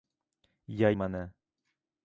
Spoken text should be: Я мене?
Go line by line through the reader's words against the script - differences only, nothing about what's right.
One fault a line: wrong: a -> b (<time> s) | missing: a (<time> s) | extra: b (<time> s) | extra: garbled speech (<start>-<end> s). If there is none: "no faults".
no faults